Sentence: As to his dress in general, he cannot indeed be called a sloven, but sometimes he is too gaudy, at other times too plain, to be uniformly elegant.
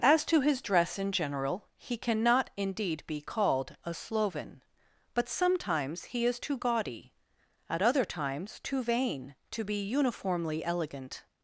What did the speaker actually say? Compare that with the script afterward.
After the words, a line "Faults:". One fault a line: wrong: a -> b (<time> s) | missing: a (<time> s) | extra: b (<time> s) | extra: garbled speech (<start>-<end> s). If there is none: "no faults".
As to his dress in general, he cannot indeed be called a sloven, but sometimes he is too gaudy, at other times too vain, to be uniformly elegant.
Faults:
wrong: plain -> vain (8.8 s)